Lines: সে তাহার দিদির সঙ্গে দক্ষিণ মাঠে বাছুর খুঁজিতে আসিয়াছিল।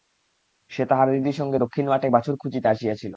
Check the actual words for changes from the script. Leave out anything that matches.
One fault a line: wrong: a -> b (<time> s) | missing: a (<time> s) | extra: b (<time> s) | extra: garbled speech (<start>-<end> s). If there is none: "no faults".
no faults